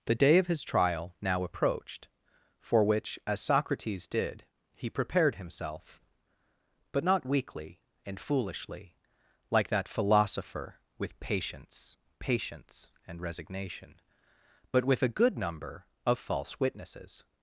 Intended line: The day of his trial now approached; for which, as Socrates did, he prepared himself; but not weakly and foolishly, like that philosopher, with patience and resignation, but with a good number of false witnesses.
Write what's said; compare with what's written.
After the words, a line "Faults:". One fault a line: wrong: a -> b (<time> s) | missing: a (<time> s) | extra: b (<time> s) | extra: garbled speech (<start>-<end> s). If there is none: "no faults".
The day of his trial now approached; for which, as Socrates did, he prepared himself; but not weakly and foolishly, like that philosopher, with patience patience and resignation, but with a good number of false witnesses.
Faults:
extra: patience (12.2 s)